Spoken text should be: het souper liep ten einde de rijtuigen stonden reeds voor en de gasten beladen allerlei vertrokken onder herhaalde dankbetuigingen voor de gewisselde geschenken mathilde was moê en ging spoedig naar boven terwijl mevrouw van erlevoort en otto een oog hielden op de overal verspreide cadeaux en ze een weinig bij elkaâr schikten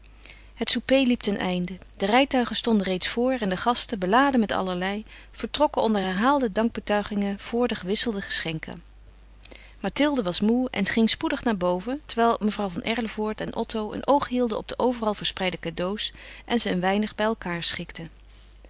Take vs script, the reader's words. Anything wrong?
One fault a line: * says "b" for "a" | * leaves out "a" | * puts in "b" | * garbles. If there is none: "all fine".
* puts in "met"